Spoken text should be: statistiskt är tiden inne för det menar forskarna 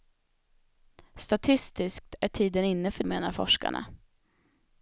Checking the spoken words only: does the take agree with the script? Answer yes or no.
no